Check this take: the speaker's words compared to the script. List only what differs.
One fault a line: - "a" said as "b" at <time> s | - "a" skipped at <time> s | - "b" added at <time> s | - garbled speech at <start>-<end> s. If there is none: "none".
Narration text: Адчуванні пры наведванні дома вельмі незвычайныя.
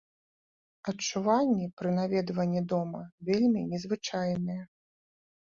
none